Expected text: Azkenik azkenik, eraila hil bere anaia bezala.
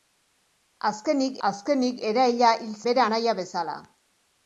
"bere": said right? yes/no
yes